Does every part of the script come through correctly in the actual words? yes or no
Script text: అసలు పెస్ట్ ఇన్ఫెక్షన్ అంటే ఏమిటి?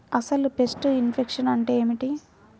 yes